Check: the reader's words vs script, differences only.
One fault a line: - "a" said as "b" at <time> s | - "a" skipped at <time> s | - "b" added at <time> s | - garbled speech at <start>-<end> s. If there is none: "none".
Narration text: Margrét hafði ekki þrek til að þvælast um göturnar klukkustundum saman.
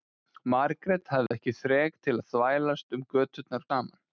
- "klukkustundum" skipped at 3.7 s